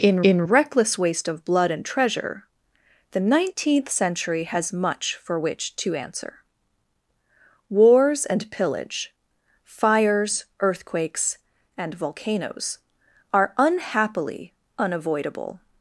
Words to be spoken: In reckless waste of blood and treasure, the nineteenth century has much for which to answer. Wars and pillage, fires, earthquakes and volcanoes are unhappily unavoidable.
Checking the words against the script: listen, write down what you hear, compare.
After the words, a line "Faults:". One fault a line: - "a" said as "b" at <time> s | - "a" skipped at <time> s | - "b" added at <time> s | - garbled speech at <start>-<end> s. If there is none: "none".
In in reckless waste of blood and treasure, the nineteenth century has much for which to answer. Wars and pillage, fires, earthquakes and volcanoes are unhappily unavoidable.
Faults:
- "in" added at 0.2 s